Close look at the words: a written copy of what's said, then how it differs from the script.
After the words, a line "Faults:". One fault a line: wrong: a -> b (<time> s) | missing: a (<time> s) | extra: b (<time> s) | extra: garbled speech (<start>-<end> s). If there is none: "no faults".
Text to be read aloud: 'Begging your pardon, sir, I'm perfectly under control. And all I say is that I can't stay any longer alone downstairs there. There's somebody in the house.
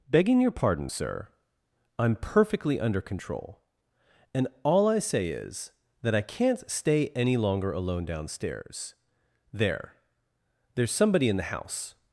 'Begging your pardon, sir, I'm perfectly under control. And all I say is that I can't stay any longer alone downstairs there. There's somebody in the house.
Faults:
no faults